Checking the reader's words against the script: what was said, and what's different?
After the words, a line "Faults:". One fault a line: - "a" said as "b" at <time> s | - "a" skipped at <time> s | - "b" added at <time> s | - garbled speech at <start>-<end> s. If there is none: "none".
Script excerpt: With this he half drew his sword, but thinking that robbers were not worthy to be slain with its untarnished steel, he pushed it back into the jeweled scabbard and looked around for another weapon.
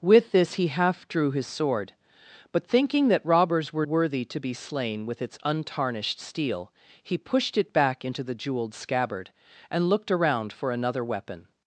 With this he half drew his sword, but thinking that robbers were worthy to be slain with its untarnished steel, he pushed it back into the jeweled scabbard and looked around for another weapon.
Faults:
- "not" skipped at 3.9 s